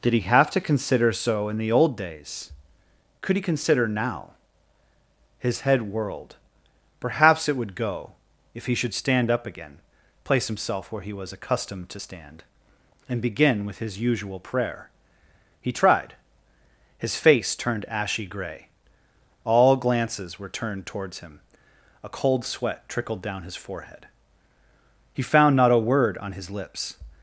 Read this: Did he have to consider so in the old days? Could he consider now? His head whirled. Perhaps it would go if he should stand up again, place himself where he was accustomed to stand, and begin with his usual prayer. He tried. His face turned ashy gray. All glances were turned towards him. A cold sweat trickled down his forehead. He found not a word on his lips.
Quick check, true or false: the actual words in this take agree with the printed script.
true